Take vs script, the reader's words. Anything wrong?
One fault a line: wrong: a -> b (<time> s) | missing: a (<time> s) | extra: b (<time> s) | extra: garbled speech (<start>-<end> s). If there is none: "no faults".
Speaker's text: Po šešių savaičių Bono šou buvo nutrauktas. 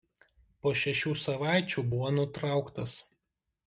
missing: Bono šou (1.9 s)